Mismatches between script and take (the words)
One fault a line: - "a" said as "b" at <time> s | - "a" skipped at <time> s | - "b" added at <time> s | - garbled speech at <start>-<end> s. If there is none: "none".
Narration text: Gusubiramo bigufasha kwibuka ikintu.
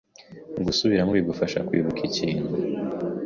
none